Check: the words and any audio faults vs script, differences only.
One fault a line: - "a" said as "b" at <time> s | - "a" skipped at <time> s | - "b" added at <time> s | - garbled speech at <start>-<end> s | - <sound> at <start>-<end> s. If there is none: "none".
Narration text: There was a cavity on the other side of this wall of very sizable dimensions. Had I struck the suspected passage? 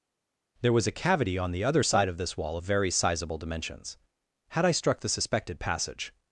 none